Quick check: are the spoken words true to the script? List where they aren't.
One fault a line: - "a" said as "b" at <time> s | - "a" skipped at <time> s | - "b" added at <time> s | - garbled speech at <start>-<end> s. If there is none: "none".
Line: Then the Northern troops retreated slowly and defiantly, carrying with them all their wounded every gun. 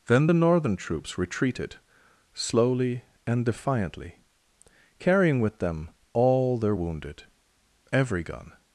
none